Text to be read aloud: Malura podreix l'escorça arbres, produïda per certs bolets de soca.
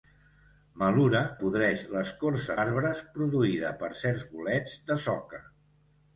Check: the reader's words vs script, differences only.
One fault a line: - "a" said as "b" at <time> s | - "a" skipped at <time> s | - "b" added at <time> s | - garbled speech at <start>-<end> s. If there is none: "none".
none